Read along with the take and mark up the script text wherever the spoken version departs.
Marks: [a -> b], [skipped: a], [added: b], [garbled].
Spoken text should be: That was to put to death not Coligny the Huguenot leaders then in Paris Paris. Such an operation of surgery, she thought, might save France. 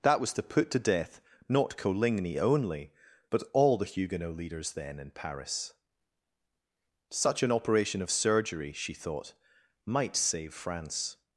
That was to put to death not Coligny [added: only but all] the Huguenot leaders then in Paris [skipped: Paris.] Such an operation of surgery, she thought, might save France.